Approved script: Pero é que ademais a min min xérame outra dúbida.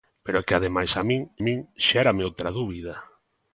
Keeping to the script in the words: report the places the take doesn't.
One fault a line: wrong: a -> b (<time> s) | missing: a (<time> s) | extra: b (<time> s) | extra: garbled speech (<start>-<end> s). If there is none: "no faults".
no faults